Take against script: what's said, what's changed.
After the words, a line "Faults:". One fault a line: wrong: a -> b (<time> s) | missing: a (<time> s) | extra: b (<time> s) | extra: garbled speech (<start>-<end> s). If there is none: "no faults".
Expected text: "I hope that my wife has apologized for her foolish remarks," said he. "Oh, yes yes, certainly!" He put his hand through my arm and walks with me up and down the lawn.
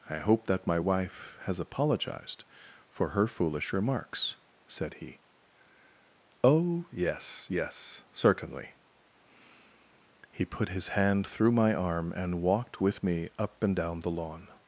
"I hope that my wife has apologized for her foolish remarks," said he. "Oh, yes yes, certainly!" He put his hand through my arm and walked with me up and down the lawn.
Faults:
wrong: walks -> walked (12.4 s)